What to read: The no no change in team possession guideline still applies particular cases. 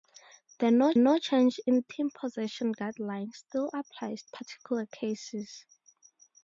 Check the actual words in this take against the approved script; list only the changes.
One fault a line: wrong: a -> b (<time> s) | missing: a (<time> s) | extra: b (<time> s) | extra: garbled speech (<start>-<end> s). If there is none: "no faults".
no faults